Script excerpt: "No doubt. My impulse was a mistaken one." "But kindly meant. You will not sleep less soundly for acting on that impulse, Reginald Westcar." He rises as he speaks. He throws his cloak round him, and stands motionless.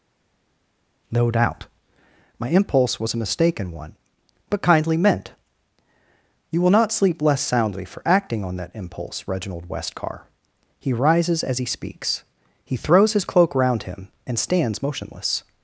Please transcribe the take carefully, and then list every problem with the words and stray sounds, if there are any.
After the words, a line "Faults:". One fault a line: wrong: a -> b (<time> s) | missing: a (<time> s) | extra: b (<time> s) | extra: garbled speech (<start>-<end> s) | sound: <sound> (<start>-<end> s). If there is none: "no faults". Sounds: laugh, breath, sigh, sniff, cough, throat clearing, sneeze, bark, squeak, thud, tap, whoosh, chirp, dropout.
"No doubt. My impulse was a mistaken one." "But kindly meant. You will not sleep less soundly for acting on that impulse, Reginald Westcar." He rises as he speaks. He throws his cloak round him, and stands motionless.
Faults:
no faults